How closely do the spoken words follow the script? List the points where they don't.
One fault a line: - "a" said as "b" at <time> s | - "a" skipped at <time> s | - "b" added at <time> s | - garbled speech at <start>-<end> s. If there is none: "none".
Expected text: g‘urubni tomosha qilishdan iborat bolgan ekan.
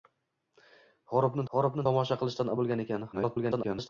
- "g‘urubni" added at 1.5 s
- "iborat" skipped at 2.5 s
- garbled speech at 3.1-3.9 s